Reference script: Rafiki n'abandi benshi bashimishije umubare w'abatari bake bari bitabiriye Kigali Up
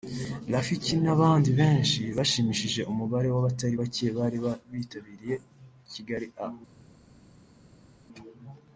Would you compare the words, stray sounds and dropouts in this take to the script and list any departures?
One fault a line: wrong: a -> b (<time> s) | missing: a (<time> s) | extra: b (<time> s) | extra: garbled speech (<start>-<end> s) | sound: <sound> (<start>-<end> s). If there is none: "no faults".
no faults